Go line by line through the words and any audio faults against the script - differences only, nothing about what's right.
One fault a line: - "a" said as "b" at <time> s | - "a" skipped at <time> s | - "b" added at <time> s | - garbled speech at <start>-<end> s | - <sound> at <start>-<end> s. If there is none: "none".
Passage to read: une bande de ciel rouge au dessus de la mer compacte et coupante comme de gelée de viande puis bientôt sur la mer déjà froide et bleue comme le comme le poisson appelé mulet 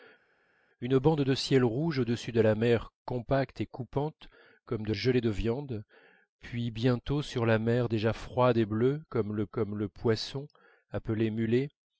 none